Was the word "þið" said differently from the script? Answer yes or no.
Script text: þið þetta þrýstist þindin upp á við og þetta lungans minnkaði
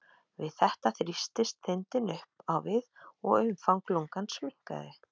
yes